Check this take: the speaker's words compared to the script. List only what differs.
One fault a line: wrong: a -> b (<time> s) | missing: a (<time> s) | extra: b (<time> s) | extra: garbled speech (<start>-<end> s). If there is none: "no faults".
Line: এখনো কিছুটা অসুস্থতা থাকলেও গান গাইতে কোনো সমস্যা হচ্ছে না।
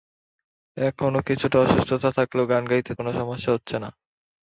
no faults